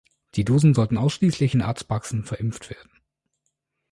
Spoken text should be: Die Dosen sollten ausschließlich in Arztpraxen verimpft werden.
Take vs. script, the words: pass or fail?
pass